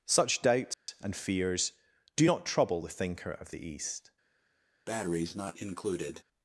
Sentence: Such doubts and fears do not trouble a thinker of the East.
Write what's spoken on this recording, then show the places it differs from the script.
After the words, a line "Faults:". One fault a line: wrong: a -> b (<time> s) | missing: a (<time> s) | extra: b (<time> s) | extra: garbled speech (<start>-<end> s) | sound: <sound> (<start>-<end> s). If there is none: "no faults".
Such doubts and fears do not trouble the thinker of the East.
Faults:
sound: dropout (0.7-0.9 s)
wrong: a -> the (2.8 s)
sound: breath (4.9-6.2 s)